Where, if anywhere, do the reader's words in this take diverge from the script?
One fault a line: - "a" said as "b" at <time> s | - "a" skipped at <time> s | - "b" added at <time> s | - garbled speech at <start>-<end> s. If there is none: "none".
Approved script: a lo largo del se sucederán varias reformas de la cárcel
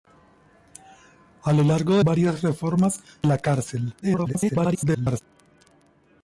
- "del se sucederán" skipped at 2.0 s
- "de" skipped at 3.0 s
- garbled speech at 4.0-5.2 s